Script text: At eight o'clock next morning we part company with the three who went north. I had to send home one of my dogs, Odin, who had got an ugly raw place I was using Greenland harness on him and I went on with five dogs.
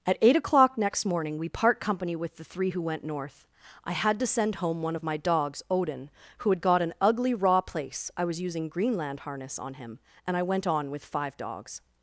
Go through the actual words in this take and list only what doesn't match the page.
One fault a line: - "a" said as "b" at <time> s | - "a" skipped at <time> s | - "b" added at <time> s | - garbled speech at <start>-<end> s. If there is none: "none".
none